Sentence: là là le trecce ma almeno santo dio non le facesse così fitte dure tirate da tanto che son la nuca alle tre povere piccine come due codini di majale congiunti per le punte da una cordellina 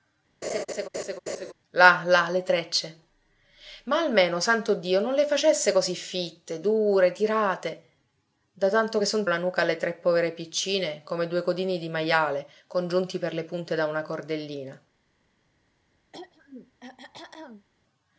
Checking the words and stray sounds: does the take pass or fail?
fail